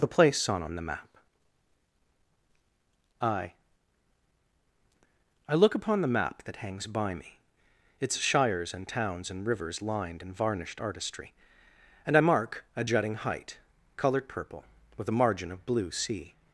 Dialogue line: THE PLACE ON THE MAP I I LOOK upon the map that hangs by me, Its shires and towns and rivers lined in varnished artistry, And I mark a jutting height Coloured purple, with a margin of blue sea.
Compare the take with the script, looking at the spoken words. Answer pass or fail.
fail